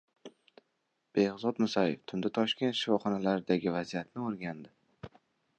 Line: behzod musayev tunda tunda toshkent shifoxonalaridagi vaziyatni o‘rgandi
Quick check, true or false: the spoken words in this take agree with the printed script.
false